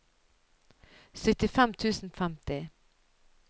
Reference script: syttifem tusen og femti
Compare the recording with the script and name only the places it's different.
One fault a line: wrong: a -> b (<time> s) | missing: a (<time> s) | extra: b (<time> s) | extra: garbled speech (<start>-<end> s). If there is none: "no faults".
no faults